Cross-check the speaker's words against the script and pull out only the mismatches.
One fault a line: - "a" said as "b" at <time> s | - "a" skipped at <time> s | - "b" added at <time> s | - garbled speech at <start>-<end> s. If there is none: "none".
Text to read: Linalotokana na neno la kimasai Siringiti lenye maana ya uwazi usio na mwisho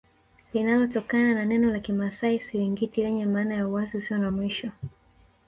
none